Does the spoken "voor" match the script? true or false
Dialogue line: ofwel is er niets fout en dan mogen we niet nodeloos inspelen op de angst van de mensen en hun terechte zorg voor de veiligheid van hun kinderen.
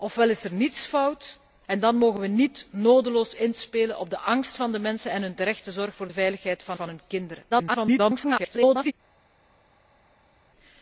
true